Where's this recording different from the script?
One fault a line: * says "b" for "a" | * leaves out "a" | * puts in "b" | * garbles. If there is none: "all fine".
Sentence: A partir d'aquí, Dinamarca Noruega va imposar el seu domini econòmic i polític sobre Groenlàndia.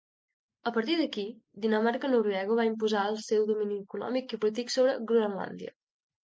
all fine